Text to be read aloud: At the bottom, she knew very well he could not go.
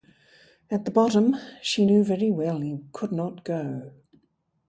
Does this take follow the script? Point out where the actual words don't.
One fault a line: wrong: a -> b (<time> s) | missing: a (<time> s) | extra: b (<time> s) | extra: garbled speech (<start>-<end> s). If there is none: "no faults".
no faults